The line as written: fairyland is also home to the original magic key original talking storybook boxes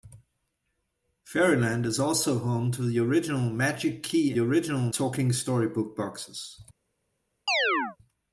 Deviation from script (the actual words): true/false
false